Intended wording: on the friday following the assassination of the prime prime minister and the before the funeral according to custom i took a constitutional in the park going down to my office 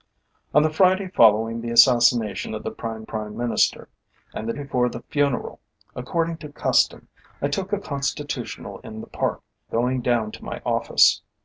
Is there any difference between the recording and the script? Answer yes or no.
no